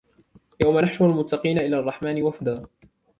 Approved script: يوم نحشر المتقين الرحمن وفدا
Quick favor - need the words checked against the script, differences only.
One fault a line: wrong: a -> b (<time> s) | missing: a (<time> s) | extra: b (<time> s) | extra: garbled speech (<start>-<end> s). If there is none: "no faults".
extra: إلى (1.6 s)